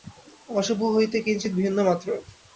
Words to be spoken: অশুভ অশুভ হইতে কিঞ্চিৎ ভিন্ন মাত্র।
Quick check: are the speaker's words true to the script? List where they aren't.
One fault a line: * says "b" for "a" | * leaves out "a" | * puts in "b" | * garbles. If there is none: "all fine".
* leaves out "অশুভ"